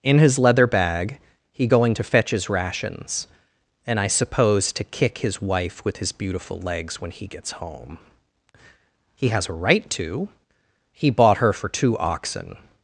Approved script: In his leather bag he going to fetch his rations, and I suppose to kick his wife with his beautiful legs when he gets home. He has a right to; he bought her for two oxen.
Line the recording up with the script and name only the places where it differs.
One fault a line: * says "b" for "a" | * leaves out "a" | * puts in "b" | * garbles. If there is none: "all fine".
all fine